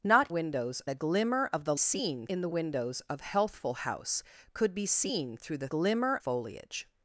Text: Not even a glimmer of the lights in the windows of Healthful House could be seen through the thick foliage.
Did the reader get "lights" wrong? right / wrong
wrong